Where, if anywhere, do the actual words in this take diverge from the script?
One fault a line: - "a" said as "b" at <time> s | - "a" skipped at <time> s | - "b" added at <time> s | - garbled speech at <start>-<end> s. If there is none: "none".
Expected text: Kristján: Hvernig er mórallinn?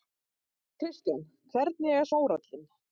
none